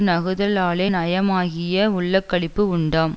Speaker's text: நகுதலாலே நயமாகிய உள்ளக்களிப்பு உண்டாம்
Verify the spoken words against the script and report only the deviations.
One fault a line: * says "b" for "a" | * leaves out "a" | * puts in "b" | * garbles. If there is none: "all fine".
all fine